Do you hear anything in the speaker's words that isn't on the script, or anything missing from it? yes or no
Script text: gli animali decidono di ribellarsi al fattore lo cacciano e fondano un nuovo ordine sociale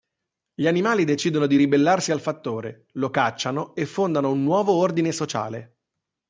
no